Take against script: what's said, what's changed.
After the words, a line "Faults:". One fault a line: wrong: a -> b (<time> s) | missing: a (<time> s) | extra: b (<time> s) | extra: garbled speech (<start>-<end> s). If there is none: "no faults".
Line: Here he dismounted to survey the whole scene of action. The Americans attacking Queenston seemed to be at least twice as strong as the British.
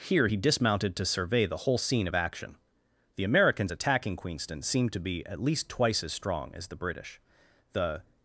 Here he dismounted to survey the whole scene of action. The Americans attacking Queenston seemed to be at least twice as strong as the British. The
Faults:
extra: The (7.7 s)